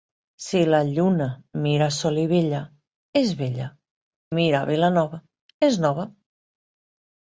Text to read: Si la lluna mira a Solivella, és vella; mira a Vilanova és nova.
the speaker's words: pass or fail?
pass